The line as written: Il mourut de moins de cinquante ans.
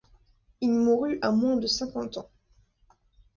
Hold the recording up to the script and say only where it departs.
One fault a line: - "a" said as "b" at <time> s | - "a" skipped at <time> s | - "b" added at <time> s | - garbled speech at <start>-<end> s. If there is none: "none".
- "de" said as "à" at 1.2 s